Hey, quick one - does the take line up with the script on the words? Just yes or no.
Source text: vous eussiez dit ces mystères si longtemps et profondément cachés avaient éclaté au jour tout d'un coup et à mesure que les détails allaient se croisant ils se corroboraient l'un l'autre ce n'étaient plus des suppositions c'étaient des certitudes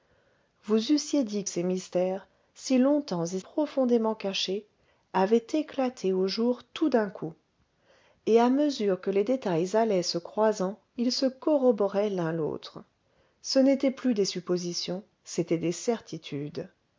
yes